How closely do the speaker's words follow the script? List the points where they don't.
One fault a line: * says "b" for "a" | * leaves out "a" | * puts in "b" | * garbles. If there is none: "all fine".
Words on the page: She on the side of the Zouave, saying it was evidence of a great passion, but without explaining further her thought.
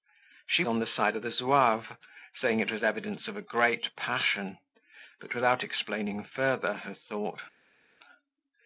all fine